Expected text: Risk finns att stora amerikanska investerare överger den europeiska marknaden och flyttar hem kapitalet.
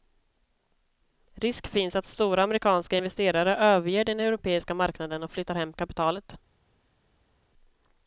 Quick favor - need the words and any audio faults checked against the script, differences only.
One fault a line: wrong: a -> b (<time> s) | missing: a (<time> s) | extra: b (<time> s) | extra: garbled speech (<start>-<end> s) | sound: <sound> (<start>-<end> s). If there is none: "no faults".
no faults